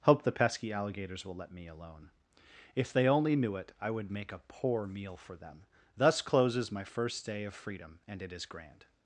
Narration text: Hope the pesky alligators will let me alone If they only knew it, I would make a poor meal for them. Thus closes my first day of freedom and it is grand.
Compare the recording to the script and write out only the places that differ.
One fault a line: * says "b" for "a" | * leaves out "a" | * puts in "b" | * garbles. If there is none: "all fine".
all fine